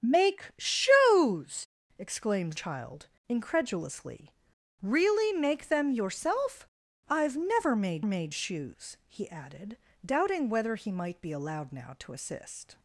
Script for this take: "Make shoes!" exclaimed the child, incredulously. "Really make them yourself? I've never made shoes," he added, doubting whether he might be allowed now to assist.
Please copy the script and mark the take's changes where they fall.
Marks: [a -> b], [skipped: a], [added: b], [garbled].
"Make shoes!" exclaimed [skipped: the] child, incredulously. "Really make them yourself? I've never made [added: made] shoes," he added, doubting whether he might be allowed now to assist.